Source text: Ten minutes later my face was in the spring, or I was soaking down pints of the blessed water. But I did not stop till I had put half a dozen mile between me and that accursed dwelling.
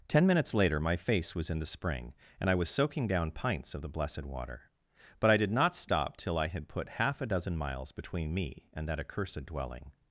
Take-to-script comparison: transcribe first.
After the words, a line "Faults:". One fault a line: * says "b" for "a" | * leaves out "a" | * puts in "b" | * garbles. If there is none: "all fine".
Ten minutes later my face was in the spring, and I was soaking down pints of the blessed water. But I did not stop till I had put half a dozen miles between me and that accursed dwelling.
Faults:
* says "and" for "or"
* says "miles" for "mile"